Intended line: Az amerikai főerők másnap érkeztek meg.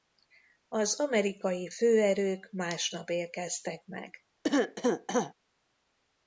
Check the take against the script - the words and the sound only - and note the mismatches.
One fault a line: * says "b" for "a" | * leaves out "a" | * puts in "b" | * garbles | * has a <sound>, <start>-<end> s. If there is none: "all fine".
* has a cough, 4.4-5.3 s